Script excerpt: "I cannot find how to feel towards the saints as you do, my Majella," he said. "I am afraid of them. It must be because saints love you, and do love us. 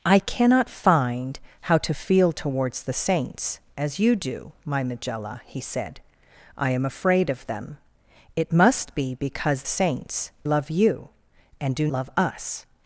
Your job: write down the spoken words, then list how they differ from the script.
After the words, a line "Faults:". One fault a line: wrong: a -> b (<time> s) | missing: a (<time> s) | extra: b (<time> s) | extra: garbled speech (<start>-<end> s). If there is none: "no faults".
"I cannot find how to feel towards the saints as you do, my Majella," he said. "I am afraid of them. It must be because saints love you, and do love us.
Faults:
no faults